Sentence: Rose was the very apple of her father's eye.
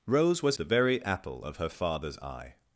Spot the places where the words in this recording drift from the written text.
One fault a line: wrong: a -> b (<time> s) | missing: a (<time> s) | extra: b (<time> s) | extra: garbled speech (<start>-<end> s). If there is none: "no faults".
no faults